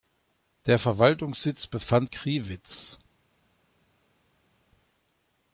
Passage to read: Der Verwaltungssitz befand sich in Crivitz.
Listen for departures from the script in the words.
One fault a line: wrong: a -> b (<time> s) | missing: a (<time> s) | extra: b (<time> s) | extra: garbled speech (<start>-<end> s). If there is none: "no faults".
missing: sich in (2.1 s)